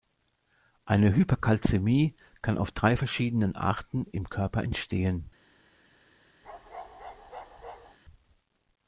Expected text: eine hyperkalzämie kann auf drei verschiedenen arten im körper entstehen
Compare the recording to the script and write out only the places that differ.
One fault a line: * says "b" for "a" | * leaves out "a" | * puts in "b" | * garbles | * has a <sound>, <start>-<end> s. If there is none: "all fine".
* has a bark, 6.4-8.0 s